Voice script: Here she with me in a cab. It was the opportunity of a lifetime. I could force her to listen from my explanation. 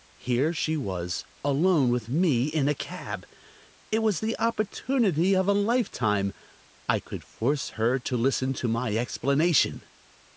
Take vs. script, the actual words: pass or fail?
fail